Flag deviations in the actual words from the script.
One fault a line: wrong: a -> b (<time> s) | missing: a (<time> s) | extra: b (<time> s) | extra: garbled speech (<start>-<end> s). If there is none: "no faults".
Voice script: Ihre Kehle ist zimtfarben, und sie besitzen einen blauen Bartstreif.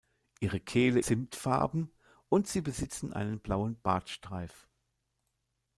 missing: ist (1.0 s)